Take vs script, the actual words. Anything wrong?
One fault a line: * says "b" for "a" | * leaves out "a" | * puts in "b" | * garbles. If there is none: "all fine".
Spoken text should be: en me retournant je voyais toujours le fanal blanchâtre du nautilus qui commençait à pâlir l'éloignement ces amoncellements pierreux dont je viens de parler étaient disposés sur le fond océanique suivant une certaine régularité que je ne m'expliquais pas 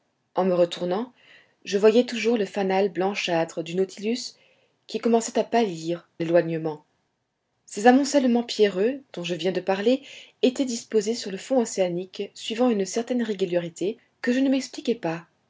all fine